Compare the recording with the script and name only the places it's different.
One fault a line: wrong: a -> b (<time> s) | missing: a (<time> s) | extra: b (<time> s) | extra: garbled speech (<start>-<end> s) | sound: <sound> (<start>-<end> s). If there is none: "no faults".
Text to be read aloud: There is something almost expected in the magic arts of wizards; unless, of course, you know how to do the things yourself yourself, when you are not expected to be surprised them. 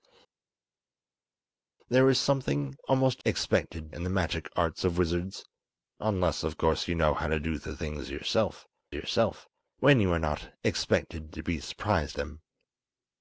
no faults